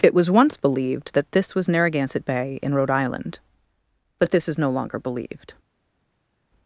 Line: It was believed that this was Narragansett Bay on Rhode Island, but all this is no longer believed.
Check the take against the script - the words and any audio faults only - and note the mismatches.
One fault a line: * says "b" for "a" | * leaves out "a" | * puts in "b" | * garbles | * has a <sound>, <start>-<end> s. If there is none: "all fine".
* puts in "once"
* says "in" for "on"
* leaves out "all"